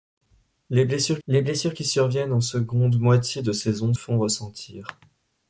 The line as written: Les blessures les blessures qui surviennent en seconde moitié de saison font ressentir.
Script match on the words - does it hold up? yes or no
yes